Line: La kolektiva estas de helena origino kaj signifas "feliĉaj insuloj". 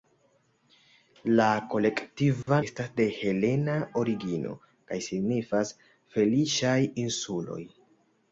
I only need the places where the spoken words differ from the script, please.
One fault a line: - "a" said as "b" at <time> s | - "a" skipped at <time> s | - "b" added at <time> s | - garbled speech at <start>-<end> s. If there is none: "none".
none